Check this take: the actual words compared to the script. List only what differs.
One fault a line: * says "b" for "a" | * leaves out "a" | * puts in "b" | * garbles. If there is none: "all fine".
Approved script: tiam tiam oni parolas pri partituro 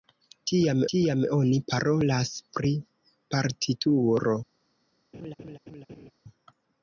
all fine